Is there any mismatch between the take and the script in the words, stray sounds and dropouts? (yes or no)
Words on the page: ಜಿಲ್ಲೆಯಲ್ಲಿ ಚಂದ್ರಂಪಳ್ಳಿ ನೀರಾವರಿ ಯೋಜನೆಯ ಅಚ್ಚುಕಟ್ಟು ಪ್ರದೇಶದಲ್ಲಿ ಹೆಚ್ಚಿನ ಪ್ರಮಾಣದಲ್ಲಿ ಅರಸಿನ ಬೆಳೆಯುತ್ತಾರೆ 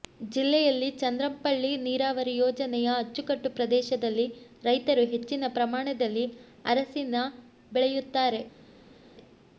yes